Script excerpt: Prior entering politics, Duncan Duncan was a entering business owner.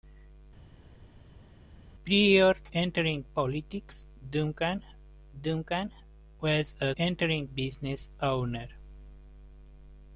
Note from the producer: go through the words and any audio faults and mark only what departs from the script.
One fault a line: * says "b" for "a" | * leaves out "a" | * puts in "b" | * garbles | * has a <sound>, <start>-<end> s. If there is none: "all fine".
all fine